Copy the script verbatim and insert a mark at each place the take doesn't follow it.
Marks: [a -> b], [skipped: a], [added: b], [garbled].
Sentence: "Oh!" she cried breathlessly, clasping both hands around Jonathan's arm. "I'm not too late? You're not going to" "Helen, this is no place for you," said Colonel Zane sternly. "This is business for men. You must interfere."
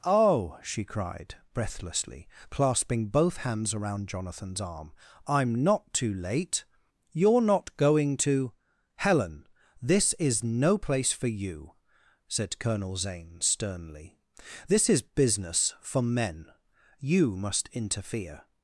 "Oh!" she cried breathlessly, clasping both hands around Jonathan's arm. "I'm not too late? You're not going to" "Helen, this is no place for you," said Colonel Zane sternly. "This is business for men. You must interfere."